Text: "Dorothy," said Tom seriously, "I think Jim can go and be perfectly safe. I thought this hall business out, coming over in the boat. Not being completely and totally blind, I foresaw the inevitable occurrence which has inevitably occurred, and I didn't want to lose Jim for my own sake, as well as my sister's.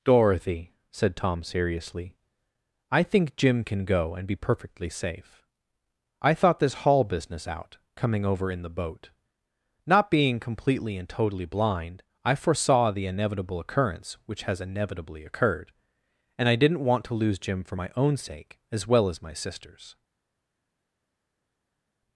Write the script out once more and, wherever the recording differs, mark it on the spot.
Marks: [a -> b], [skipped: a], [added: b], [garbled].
"Dorothy," said Tom seriously, "I think Jim can go and be perfectly safe. I thought this hall business out, coming over in the boat. Not being completely and totally blind, I foresaw the inevitable occurrence which has inevitably occurred, and I didn't want to lose Jim for my own sake, as well as my sister's.